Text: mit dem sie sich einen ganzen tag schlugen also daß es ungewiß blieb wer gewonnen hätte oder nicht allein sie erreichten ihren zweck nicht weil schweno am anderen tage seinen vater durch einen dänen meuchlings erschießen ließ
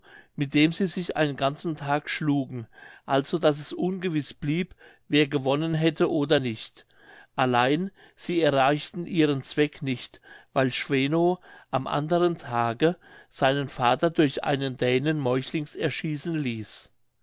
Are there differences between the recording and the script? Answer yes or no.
no